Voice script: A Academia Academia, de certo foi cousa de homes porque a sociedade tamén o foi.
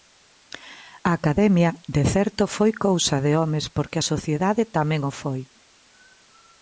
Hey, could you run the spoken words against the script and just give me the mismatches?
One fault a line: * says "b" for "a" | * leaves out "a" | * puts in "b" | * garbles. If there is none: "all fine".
* leaves out "Academia"